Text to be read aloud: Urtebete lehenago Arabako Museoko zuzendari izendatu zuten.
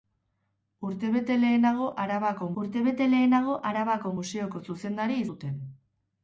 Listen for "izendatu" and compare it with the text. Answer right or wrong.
wrong